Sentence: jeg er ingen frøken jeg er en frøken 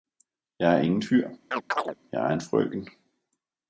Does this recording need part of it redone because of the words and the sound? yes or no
yes